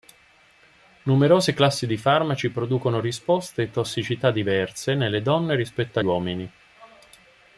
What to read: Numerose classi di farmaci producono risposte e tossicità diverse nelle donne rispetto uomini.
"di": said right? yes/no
yes